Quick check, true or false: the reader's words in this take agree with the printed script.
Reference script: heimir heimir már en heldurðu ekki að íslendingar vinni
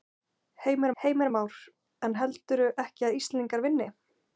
true